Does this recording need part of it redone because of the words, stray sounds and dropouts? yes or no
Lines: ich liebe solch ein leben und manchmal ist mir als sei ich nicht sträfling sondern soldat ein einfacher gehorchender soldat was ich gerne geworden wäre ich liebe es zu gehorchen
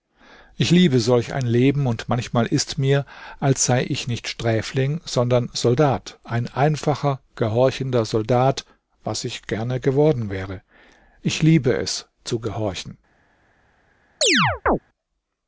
yes